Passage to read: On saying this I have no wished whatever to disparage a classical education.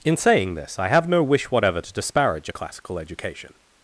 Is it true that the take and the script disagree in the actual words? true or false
true